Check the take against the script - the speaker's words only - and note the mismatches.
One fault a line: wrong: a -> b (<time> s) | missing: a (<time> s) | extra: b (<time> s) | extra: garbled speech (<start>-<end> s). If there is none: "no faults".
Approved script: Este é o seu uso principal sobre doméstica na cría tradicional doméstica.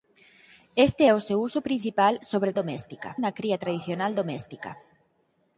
no faults